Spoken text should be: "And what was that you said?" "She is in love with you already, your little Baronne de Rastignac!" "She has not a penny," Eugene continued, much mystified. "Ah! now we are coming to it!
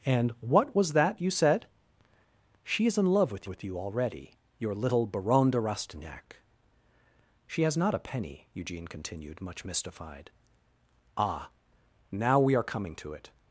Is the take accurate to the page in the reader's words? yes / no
no